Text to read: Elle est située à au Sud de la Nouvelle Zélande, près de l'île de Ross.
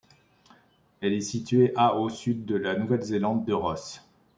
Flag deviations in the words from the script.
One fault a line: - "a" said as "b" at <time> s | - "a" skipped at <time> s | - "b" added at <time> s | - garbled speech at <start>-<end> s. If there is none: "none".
- "près de l'île" skipped at 3.5 s